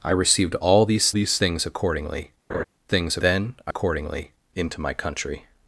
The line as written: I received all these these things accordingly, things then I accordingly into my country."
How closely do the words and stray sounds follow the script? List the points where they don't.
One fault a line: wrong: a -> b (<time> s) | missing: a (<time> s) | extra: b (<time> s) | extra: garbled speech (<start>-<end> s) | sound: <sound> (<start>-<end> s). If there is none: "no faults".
sound: laugh (2.5-2.6 s)